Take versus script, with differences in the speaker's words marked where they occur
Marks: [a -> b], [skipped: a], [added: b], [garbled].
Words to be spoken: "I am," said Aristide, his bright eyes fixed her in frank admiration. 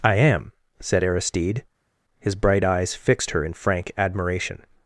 "I am," said Aristide, his bright eyes fixed her in frank admiration.